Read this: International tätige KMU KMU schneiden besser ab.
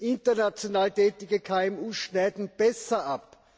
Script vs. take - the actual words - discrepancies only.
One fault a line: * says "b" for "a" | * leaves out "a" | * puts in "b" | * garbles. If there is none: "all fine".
* leaves out "KMU"